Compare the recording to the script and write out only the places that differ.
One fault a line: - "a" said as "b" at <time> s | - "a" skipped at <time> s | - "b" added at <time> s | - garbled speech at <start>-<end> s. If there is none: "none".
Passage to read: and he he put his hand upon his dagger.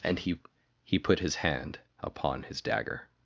none